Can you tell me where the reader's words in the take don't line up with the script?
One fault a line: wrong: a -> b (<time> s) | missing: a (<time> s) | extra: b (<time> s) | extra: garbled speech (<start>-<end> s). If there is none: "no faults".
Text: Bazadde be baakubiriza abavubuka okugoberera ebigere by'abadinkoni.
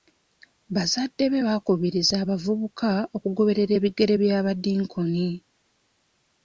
no faults